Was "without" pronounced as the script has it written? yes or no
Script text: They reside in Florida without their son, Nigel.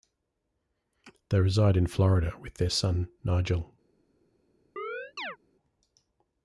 no